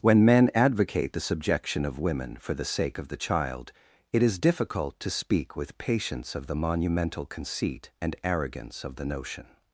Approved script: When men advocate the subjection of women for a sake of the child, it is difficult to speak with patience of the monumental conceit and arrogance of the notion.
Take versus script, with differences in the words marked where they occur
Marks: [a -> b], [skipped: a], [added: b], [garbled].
When men advocate the subjection of women for [a -> the] sake of the child, it is difficult to speak with patience of the monumental conceit and arrogance of the notion.